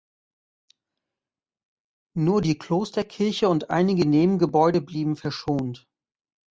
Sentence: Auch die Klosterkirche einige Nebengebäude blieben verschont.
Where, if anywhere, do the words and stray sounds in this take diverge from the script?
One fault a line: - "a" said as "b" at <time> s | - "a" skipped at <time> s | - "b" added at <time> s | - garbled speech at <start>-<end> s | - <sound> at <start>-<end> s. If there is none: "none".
- "Auch" said as "Nur" at 2.2 s
- "und" added at 3.5 s